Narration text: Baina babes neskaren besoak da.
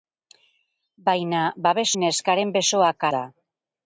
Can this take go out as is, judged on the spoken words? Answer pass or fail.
pass